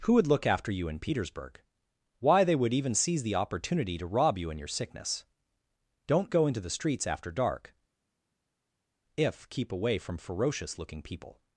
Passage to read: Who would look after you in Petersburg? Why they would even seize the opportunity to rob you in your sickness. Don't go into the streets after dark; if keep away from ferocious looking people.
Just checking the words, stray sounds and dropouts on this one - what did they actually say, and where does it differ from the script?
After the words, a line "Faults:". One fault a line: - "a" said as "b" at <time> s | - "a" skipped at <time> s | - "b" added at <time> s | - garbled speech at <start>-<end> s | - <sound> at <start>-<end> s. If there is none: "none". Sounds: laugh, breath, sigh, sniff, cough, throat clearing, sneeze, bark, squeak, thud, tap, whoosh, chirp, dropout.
Who would look after you in Petersburg? Why they would even seize the opportunity to rob you in your sickness. Don't go into the streets after dark; if keep away from ferocious looking people.
Faults:
none